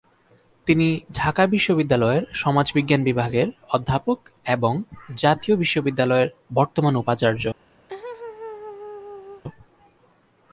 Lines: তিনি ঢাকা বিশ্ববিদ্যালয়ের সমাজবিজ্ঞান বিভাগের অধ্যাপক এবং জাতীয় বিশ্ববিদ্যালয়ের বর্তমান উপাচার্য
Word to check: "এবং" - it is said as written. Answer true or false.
true